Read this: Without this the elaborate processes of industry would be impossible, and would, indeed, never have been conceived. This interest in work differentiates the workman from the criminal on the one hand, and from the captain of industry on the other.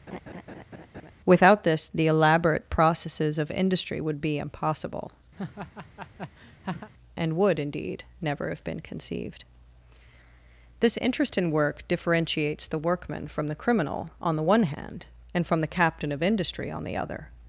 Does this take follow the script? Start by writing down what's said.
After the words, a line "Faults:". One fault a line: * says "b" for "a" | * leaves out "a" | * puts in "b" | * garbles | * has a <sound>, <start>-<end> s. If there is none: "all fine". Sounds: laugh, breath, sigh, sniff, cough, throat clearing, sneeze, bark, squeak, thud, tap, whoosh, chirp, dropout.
Without this the elaborate processes of industry would be impossible, and would, indeed, never have been conceived. This interest in work differentiates the workman from the criminal on the one hand, and from the captain of industry on the other.
Faults:
* has a laugh, 0.1-1.1 s
* has a laugh, 5.3-6.9 s